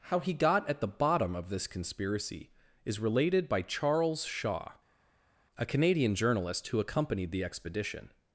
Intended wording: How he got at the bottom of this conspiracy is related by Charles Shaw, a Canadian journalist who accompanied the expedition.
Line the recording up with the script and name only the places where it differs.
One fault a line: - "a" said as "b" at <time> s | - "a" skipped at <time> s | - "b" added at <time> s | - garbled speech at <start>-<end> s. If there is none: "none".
none